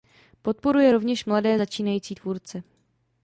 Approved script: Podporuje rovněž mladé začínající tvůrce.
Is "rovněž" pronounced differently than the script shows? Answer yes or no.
no